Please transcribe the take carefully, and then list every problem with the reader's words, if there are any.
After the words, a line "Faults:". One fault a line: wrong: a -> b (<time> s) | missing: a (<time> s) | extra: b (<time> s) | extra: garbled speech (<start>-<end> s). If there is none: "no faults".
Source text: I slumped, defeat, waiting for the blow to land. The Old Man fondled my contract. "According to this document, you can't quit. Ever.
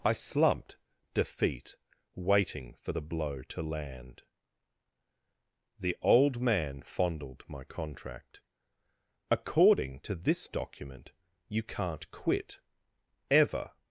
I slumped, defeat, waiting for the blow to land. The Old Man fondled my contract. "According to this document, you can't quit. Ever.
Faults:
no faults